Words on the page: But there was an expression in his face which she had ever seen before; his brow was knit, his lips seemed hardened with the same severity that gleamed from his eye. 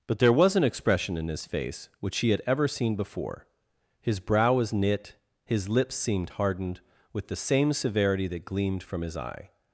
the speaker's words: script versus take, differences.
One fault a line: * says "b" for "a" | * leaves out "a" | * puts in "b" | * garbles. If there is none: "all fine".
all fine